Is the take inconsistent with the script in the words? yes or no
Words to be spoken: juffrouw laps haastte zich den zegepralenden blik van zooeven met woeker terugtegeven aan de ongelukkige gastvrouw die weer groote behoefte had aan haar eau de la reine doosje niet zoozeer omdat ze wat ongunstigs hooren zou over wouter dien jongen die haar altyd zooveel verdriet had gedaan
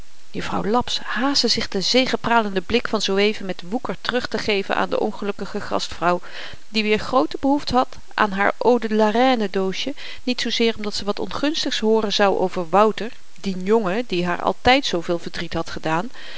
no